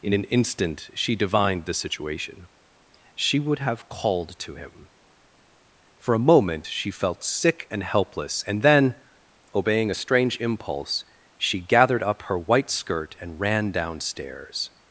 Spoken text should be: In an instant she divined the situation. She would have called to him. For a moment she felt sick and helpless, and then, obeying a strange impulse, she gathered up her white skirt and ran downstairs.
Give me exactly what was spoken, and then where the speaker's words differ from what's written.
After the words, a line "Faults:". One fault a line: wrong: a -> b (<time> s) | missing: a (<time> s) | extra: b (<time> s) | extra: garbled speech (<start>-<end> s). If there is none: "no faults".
In an instant she divined the situation. She would have called to him. For a moment she felt sick and helpless, and then, obeying a strange impulse, she gathered up her white skirt and ran downstairs.
Faults:
no faults